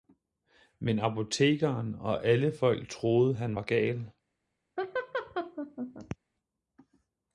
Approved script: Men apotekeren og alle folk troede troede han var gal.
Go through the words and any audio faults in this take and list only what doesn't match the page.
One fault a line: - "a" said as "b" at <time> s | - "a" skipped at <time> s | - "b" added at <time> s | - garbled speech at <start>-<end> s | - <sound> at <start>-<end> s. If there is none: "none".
- "troede" skipped at 3.4 s
- laugh at 4.8-6.2 s